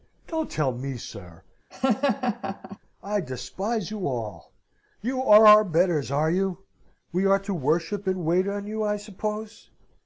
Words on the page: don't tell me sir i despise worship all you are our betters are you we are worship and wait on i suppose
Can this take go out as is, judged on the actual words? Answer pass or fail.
fail